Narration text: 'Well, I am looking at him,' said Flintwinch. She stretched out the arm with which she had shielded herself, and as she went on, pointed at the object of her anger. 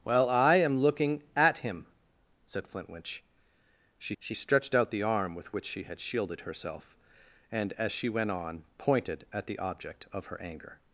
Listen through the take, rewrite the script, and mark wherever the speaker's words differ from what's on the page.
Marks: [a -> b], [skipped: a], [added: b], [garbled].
'Well, I am looking at him,' said Flintwinch. She [added: she] stretched out the arm with which she had shielded herself, and as she went on, pointed at the object of her anger.